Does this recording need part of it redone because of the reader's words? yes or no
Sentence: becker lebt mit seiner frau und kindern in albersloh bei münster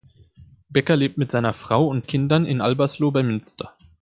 no